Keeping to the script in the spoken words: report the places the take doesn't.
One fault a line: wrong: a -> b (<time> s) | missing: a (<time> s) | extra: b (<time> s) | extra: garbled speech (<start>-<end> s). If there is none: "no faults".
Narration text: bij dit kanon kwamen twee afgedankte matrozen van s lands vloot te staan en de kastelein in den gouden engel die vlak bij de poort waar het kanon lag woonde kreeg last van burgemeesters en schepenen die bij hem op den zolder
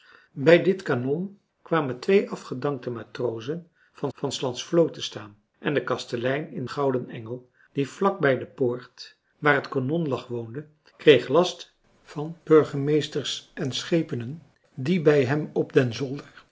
extra: van (4.1 s)
missing: den (6.7 s)